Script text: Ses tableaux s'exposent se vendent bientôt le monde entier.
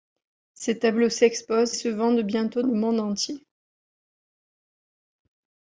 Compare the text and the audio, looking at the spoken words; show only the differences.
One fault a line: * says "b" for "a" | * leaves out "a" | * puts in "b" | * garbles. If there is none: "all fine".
all fine